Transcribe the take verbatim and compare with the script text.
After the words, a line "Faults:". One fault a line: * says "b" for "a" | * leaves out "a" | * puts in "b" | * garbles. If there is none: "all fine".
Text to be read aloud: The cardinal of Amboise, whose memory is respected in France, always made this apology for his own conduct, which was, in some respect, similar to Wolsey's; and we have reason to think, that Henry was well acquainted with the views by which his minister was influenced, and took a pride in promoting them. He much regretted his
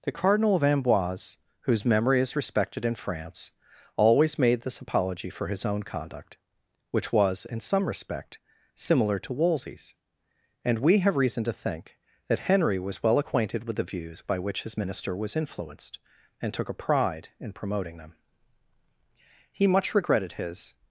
The cardinal of Amboise, whose memory is respected in France, always made this apology for his own conduct, which was, in some respect, similar to Wolsey's; and we have reason to think, that Henry was well acquainted with the views by which his minister was influenced, and took a pride in promoting them. He much regretted his
Faults:
all fine